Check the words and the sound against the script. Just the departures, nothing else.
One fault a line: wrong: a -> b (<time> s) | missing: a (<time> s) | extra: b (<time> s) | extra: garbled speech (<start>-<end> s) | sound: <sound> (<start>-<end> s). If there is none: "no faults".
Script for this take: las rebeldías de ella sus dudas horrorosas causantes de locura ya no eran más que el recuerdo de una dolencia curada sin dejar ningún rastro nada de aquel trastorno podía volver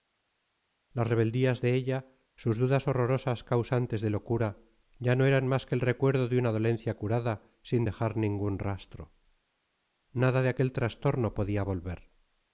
no faults